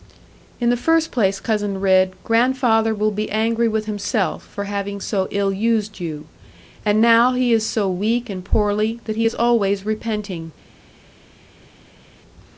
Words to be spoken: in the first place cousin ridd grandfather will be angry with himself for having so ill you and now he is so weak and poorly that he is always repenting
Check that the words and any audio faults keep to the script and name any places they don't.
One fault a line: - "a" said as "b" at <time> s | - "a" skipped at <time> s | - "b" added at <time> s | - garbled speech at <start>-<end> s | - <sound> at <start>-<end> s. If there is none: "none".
- "used" added at 5.5 s